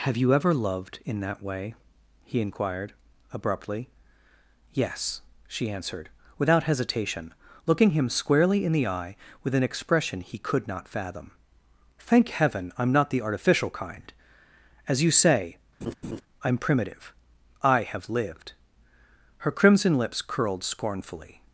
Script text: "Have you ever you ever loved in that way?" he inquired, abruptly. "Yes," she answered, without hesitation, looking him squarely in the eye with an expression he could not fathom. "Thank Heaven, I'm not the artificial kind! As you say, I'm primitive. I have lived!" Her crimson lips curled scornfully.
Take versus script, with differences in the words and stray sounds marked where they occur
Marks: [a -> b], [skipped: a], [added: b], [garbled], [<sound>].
"Have you ever [skipped: you ever] loved in that way?" he inquired, abruptly. "Yes," she answered, without hesitation, looking him squarely in the eye with an expression he could not fathom. "Thank Heaven, I'm not the artificial kind! As you say, [laugh] I'm primitive. I have lived!" Her crimson lips curled scornfully.